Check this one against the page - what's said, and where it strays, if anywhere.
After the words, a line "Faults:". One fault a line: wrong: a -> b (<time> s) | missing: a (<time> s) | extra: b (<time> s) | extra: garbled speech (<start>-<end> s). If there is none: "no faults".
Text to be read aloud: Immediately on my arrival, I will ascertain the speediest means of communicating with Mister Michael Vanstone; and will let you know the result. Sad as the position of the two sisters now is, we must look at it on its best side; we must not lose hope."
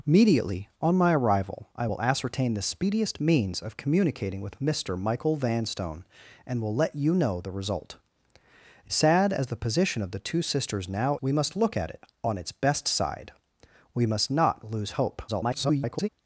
Immediately on my arrival, I will ascertain the speediest means of communicating with Mister Michael Vanstone; and will let you know the result. Sad as the position of the two sisters now we must look at it on its best side; we must not lose hope." [garbled]
Faults:
missing: is (11.2 s)
extra: garbled speech (15.3-16.1 s)